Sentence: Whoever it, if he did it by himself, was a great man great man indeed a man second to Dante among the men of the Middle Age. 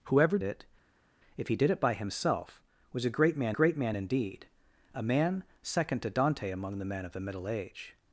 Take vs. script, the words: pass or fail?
pass